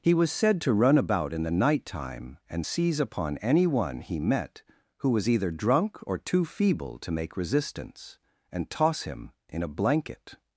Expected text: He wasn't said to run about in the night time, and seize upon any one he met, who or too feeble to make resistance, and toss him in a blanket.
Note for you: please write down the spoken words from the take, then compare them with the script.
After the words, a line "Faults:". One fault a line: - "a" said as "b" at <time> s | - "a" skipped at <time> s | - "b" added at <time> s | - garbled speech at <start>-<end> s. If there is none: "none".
He was said to run about in the night time, and seize upon any one he met, who was either drunk or too feeble to make resistance, and toss him in a blanket.
Faults:
- "wasn't" said as "was" at 0.1 s
- "was either drunk" added at 5.1 s